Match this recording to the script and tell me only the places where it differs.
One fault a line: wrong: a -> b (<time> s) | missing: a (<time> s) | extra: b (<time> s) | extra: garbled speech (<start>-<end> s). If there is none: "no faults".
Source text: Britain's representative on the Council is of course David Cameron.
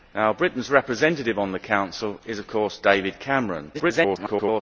extra: garbled speech (3.7-4.6 s)